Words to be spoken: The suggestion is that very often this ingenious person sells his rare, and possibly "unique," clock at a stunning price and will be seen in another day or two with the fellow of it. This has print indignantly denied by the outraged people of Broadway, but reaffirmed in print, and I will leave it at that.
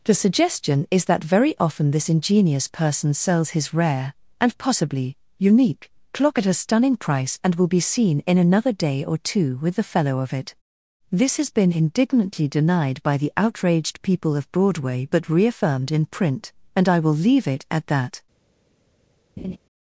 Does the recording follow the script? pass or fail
fail